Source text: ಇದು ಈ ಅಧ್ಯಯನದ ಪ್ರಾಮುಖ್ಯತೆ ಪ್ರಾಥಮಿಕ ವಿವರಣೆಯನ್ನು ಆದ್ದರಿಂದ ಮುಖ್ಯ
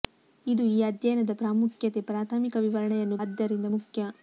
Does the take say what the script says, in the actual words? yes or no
yes